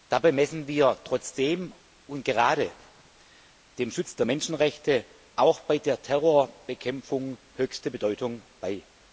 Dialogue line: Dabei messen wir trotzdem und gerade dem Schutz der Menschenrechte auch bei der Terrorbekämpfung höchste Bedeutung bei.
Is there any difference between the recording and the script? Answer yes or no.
no